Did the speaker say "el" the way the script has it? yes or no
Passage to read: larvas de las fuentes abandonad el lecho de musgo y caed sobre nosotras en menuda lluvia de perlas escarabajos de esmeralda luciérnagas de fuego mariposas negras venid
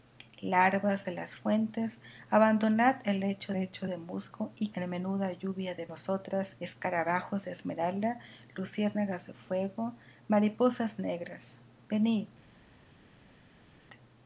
yes